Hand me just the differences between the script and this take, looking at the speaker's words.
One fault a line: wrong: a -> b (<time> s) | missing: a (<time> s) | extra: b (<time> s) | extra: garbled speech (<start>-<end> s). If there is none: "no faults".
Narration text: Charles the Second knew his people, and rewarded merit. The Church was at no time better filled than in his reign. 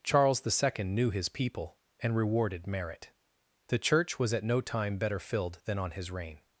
wrong: in -> on (5.8 s)